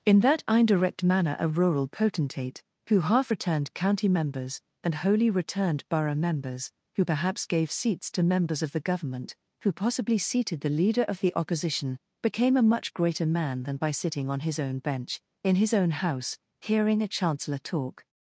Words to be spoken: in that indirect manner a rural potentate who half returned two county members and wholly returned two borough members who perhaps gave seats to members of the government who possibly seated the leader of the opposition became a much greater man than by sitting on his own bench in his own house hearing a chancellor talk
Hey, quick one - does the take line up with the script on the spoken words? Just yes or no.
no